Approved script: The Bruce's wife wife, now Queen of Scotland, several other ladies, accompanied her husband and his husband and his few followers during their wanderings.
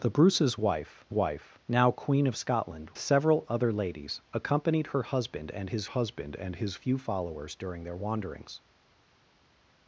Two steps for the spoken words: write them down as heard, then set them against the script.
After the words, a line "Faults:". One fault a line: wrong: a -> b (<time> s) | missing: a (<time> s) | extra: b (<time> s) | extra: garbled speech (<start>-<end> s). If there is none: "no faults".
The Bruce's wife wife, now Queen of Scotland, several other ladies, accompanied her husband and his husband and his few followers during their wanderings.
Faults:
no faults